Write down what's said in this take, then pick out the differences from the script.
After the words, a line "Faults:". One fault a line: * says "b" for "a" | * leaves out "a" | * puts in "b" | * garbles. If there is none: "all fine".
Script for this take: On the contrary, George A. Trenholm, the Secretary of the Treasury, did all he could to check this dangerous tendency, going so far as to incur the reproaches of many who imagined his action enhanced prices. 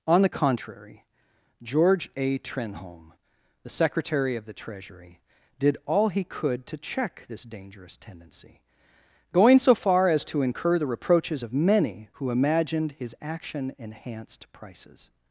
On the contrary, George A. Trenholm, the Secretary of the Treasury, did all he could to check this dangerous tendency, going so far as to incur the reproaches of many who imagined his action enhanced prices.
Faults:
all fine